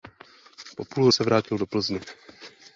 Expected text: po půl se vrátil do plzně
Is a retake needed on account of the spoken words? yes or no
no